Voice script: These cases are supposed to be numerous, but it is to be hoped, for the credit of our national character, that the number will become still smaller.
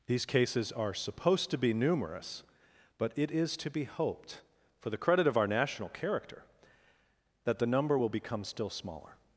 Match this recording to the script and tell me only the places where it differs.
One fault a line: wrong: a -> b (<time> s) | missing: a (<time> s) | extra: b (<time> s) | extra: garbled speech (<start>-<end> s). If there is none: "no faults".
no faults